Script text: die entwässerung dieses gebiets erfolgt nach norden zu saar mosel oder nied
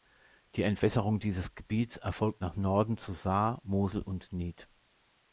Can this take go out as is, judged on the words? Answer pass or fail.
fail